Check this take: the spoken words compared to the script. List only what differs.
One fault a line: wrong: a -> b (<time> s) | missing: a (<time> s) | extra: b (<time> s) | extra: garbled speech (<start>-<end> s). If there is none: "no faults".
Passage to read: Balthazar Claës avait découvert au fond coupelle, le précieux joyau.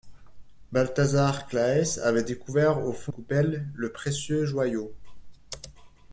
no faults